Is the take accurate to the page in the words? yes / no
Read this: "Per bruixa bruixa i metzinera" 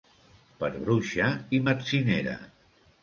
no